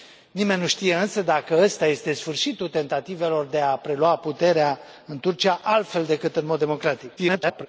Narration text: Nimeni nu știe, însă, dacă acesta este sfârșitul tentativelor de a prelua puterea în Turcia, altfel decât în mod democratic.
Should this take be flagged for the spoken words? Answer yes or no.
yes